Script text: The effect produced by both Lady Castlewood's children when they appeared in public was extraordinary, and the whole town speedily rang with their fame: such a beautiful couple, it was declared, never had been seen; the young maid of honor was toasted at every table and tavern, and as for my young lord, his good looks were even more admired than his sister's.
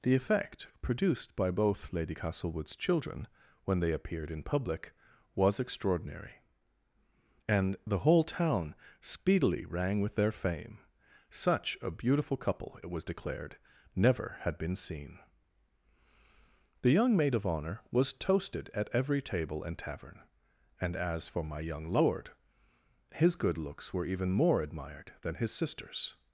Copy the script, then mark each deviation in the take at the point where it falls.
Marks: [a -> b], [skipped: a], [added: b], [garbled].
The effect produced by both Lady Castlewood's children when they appeared in public was extraordinary, and the whole town speedily rang with their fame: such a beautiful couple, it was declared, never had been seen; the young maid of honor was toasted at every table and tavern, and as for my young lord, his good looks were even more admired than his sister's.